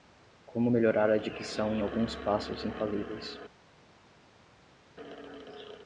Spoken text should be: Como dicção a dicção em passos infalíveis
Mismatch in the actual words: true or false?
true